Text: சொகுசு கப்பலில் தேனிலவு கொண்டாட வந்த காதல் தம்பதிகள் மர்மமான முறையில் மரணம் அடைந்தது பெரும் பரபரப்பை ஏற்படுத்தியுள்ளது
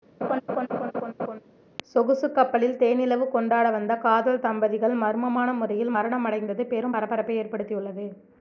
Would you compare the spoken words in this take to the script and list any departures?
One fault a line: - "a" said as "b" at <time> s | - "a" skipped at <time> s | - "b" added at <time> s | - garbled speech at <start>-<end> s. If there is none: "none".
none